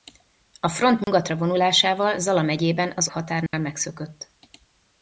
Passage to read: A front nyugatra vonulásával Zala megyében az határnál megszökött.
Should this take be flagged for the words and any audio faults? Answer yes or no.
yes